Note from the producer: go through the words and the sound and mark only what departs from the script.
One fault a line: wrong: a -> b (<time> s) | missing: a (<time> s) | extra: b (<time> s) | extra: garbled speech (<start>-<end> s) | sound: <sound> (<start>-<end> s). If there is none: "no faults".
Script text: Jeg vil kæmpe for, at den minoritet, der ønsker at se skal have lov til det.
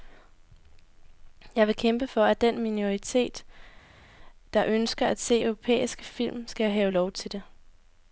extra: europæiske film (5.4 s)